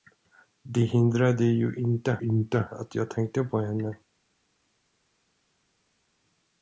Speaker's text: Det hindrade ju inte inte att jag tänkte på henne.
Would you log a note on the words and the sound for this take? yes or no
no